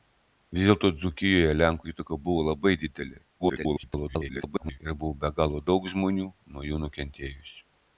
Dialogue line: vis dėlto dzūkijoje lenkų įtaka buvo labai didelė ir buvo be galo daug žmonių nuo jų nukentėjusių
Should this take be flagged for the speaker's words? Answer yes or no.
yes